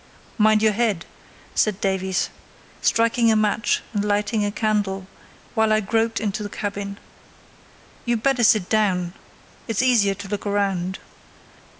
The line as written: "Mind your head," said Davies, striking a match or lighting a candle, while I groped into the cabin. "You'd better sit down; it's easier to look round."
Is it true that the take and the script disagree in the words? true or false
true